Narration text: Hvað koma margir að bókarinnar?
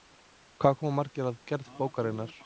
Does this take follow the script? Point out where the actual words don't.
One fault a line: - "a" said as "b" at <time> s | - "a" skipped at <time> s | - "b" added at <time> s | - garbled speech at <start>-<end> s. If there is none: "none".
- "gerð" added at 1.5 s